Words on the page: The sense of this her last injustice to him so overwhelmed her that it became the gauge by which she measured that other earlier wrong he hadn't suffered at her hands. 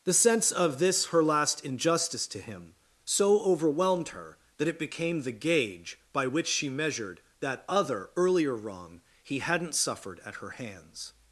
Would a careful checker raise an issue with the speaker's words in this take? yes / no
no